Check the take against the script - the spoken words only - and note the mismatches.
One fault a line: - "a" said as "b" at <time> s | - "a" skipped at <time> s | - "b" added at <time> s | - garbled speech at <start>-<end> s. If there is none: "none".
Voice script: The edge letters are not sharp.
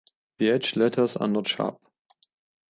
none